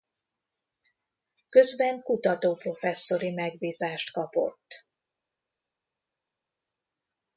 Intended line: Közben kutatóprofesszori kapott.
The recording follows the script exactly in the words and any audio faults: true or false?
false